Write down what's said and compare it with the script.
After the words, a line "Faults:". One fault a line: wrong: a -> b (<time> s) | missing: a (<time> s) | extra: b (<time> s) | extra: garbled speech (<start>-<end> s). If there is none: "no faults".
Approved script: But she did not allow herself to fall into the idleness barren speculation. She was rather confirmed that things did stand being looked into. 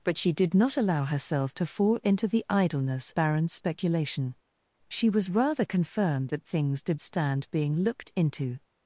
But she did not allow herself to fall into the idleness barren speculation. She was rather confirmed that things did stand being looked into.
Faults:
no faults